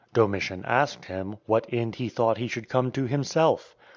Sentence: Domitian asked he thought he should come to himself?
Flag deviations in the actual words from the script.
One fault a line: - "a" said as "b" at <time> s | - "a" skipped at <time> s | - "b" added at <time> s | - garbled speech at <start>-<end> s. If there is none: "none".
- "him what end" added at 1.0 s